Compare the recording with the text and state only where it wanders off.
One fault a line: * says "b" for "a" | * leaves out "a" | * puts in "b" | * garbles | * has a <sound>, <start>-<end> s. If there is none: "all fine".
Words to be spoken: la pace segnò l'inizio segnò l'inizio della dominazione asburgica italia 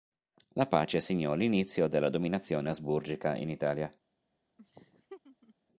* leaves out "segnò l'inizio"
* puts in "in"
* has a laugh, 4.6-5.5 s